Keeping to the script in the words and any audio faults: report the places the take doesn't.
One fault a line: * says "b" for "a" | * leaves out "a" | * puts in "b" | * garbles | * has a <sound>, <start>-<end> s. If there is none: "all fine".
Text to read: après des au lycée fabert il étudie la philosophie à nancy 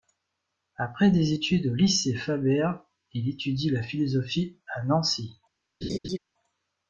* puts in "études"
* has a laugh, 5.8-6.2 s